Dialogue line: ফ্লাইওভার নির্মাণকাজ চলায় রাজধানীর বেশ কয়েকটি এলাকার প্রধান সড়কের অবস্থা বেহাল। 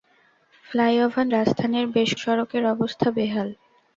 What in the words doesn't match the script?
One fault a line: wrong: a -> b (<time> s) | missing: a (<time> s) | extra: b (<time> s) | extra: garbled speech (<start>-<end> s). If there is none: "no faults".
missing: নির্মাণকাজ চলায় (1.3 s)
missing: কয়েকটি এলাকার প্রধান (2.1 s)